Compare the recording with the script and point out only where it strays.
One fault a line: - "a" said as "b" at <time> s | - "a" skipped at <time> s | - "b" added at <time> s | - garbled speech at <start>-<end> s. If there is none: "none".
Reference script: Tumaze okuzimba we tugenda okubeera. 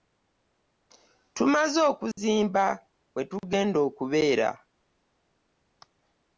none